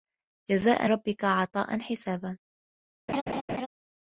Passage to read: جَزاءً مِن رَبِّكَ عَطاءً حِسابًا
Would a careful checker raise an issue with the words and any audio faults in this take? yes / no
yes